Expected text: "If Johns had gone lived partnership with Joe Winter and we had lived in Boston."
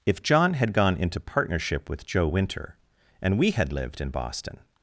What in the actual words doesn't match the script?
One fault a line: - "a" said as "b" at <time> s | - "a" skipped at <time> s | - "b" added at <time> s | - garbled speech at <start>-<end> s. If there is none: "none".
- "Johns" said as "John" at 0.2 s
- "lived" said as "into" at 1.0 s